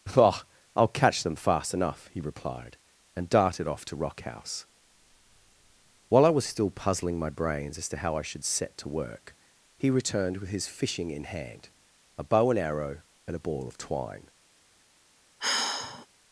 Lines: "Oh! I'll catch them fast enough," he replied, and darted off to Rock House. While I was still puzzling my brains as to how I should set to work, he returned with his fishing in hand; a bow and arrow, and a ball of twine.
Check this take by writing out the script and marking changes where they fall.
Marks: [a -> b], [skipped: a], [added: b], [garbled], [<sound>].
"Oh! I'll catch them fast enough," he replied, and darted off to Rock House. While I was still puzzling my brains as to how I should set to work, he returned with his fishing in hand; a bow and arrow, and a ball of twine. [sigh]